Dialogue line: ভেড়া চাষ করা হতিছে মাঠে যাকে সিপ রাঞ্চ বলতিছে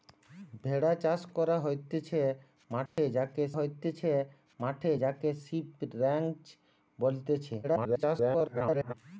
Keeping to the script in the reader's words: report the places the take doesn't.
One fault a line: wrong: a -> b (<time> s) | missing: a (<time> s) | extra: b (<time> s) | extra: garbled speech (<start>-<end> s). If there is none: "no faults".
extra: হতিছে মাঠে যাকে (3.5 s)
extra: garbled speech (7.6-8.9 s)